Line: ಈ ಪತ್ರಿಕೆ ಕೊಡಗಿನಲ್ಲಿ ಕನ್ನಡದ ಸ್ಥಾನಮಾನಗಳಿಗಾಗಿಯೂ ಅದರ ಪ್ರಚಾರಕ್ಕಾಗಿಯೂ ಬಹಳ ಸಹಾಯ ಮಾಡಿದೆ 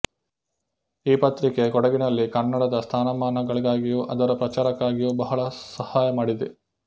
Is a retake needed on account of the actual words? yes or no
no